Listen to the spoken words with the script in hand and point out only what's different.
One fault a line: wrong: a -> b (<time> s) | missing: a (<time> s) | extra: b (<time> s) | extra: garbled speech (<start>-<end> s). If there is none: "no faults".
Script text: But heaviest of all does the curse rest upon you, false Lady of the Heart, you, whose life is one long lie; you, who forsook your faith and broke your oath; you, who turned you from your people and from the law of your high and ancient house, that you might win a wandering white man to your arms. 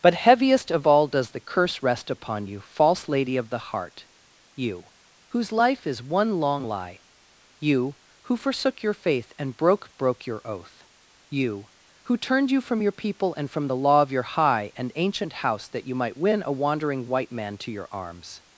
extra: broke (10.0 s)